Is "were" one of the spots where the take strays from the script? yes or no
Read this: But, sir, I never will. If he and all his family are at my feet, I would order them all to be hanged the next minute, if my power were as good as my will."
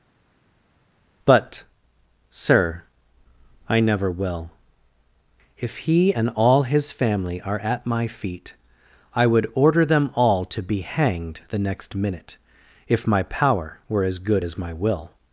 no